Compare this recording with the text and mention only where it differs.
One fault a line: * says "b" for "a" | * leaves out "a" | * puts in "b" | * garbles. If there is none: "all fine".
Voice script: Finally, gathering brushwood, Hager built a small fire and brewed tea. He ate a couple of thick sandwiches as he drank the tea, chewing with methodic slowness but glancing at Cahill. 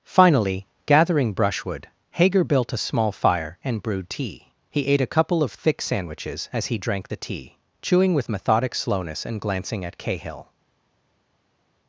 * says "and" for "but"